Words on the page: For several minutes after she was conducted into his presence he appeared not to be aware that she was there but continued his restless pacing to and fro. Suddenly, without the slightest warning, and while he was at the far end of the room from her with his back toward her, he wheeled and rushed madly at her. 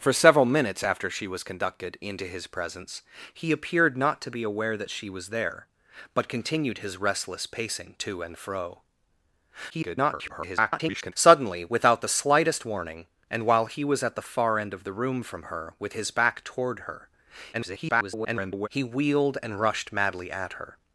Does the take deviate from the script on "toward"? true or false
false